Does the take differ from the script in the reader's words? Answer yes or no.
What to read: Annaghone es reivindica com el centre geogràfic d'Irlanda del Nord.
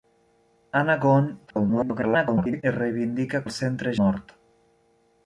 yes